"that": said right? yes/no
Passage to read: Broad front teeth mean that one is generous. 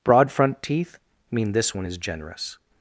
no